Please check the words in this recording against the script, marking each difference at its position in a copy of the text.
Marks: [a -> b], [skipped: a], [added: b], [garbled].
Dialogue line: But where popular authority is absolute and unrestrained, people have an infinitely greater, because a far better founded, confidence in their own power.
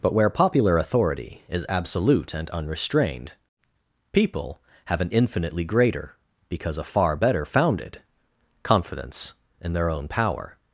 But where popular authority is absolute and unrestrained, people have an infinitely greater, because a far better founded, confidence in their own power.